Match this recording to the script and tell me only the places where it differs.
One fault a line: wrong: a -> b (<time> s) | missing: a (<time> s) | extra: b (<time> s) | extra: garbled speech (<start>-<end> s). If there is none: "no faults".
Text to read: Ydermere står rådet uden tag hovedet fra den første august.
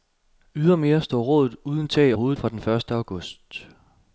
no faults